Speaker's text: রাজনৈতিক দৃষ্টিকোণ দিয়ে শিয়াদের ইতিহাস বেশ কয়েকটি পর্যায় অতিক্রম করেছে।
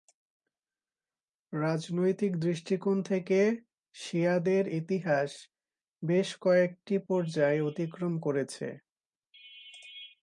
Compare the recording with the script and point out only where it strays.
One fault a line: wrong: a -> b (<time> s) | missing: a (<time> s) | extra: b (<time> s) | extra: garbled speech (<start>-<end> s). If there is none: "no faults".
wrong: দিয়ে -> থেকে (3.0 s)